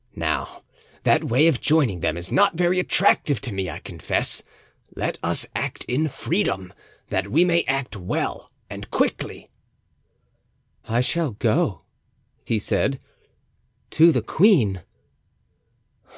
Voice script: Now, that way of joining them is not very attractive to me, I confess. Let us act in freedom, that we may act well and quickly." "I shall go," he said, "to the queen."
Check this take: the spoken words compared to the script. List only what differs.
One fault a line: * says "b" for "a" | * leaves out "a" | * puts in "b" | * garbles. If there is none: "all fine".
all fine